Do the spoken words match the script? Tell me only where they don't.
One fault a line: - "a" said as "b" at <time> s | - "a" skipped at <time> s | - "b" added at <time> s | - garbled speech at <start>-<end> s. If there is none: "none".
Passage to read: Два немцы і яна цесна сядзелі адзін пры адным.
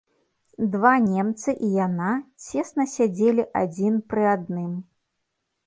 none